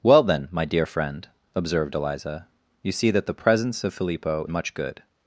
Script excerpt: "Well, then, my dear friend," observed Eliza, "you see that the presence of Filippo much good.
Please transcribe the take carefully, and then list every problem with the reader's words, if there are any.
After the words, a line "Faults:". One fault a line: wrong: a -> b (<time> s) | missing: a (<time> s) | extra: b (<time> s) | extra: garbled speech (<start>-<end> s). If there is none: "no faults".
"Well, then, my dear friend," observed Eliza, "you see that the presence of Filippo much good.
Faults:
no faults